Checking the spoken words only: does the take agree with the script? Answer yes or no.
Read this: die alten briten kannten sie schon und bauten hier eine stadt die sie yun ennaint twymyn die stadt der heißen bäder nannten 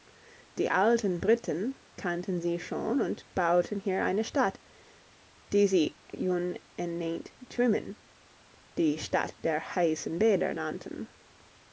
yes